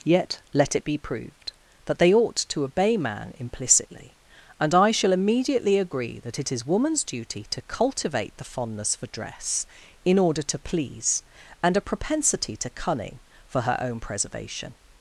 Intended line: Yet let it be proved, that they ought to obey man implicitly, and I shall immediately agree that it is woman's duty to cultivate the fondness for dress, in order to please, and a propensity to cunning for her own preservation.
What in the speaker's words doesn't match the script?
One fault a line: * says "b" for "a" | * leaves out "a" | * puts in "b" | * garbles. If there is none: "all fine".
all fine